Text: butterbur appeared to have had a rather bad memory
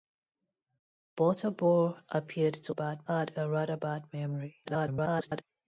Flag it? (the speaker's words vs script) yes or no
yes